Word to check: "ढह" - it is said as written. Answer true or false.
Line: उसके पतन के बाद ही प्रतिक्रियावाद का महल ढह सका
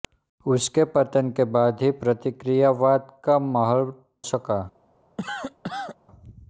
false